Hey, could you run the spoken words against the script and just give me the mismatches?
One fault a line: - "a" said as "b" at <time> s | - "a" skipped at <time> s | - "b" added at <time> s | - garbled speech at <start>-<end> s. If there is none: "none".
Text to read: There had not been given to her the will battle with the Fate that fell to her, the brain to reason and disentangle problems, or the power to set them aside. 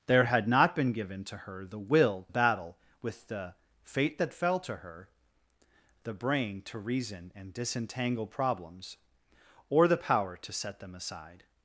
none